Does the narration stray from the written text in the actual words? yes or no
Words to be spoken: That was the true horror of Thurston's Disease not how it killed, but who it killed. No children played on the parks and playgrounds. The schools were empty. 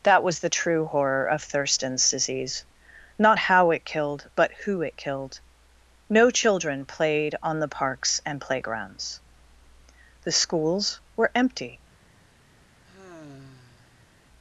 no